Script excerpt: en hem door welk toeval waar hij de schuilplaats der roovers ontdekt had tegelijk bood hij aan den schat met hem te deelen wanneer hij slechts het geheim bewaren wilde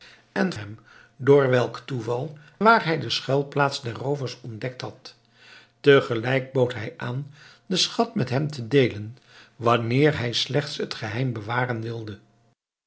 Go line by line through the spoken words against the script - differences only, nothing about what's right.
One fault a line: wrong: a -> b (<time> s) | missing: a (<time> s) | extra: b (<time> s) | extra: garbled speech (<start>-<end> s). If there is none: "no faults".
no faults